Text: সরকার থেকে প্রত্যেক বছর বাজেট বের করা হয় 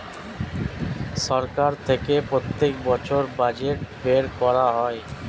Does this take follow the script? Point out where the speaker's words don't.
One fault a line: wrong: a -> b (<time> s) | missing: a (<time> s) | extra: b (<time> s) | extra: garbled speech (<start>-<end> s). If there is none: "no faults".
no faults